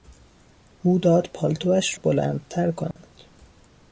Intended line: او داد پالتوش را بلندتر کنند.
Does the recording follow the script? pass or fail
fail